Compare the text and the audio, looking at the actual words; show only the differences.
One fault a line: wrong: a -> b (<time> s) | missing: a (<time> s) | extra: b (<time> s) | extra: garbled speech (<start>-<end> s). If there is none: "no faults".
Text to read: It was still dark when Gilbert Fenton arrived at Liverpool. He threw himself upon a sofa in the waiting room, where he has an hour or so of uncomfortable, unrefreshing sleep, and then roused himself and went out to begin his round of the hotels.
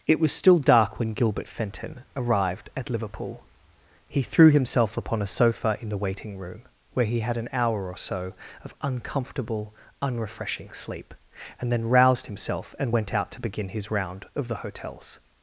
wrong: has -> had (7.2 s)